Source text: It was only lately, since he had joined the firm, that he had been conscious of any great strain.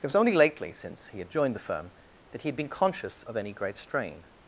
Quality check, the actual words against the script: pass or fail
pass